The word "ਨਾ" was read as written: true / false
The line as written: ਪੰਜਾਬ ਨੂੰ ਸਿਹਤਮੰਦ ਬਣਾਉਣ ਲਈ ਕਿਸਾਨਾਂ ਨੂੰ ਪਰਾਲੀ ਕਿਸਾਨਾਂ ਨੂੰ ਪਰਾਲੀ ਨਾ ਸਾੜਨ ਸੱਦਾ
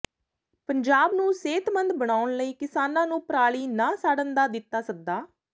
false